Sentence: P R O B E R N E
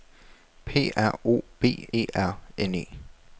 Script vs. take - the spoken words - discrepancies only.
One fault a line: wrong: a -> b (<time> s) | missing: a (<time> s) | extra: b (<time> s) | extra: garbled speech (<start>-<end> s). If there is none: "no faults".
no faults